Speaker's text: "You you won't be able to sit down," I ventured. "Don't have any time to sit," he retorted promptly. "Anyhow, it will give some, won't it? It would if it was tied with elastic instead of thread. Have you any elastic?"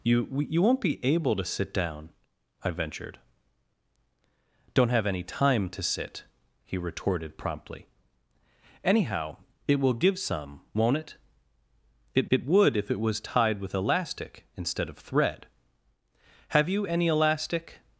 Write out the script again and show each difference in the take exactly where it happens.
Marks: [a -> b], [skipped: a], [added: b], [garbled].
"You you won't be able to sit down," I ventured. "Don't have any time to sit," he retorted promptly. "Anyhow, it will give some, won't it? It [added: it] would if it was tied with elastic instead of thread. Have you any elastic?"